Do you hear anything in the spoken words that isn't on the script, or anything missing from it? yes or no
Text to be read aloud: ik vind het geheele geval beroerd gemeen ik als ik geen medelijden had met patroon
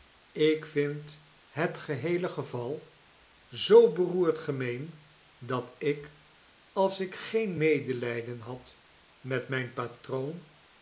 yes